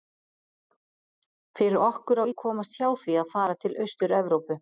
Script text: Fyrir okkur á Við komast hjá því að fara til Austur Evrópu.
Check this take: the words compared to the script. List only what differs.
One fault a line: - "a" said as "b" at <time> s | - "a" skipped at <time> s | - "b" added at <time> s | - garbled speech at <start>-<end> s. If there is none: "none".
none